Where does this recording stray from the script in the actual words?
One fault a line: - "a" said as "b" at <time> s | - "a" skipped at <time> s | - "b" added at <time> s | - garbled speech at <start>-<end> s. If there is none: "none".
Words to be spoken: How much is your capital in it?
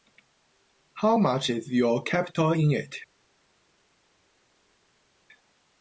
none